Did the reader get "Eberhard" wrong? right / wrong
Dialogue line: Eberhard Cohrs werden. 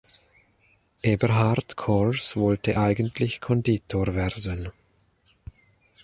right